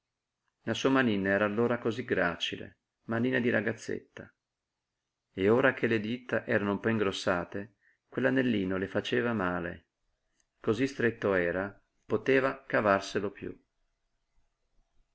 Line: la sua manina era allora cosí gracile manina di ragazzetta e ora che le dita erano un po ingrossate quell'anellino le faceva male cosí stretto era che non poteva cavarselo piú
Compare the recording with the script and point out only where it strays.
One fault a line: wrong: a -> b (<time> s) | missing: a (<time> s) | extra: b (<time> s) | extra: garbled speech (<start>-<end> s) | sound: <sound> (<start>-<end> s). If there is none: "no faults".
missing: che non (11.8 s)